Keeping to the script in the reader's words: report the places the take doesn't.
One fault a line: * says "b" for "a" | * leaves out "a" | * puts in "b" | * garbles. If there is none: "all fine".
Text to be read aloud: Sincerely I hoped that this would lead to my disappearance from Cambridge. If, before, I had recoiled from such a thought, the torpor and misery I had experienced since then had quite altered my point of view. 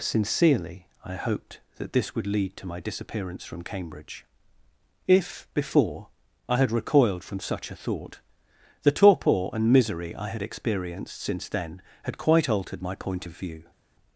all fine